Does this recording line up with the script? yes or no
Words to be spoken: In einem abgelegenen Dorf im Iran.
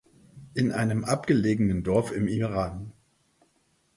yes